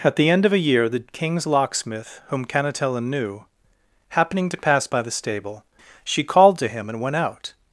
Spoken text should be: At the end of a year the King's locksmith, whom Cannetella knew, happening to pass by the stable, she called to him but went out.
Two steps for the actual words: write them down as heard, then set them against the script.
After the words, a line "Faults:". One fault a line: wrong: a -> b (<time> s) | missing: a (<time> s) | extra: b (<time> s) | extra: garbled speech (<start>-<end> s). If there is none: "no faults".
At the end of a year the King's locksmith, whom Cannetella knew, happening to pass by the stable, she called to him and went out.
Faults:
wrong: but -> and (6.9 s)